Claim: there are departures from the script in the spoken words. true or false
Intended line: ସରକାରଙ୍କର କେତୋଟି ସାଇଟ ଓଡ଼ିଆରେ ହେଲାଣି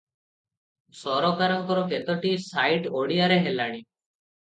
false